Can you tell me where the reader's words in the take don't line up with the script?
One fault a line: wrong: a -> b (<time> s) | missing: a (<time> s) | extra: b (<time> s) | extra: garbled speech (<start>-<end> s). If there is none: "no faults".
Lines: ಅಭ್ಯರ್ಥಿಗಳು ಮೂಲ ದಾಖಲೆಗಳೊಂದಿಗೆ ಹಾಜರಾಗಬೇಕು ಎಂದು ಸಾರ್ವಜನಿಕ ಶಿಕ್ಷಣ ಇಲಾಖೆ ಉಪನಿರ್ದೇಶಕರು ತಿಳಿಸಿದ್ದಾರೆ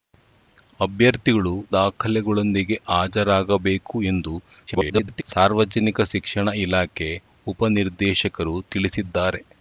missing: ಮೂಲ (1.5 s)
extra: garbled speech (4.7-5.2 s)